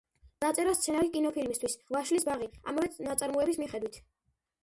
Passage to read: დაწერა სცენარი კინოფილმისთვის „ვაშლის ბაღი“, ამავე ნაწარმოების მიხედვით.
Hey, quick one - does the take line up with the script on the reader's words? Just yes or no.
yes